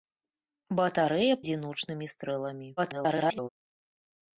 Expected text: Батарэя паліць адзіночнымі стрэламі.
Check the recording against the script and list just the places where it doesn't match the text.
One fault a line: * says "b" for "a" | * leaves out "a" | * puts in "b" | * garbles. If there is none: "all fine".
* leaves out "паліць"
* garbles